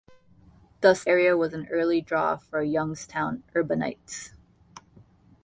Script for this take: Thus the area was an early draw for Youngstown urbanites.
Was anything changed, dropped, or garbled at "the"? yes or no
yes